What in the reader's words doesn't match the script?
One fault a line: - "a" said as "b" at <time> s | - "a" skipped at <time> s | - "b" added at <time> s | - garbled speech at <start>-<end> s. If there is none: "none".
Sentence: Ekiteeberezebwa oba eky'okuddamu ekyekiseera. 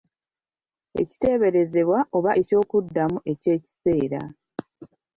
none